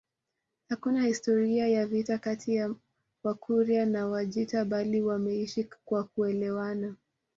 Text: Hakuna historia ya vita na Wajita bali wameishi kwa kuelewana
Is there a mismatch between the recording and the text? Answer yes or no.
yes